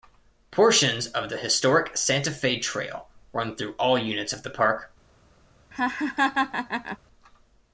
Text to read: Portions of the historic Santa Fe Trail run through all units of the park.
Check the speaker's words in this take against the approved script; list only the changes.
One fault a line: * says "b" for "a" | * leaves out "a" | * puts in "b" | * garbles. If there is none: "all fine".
all fine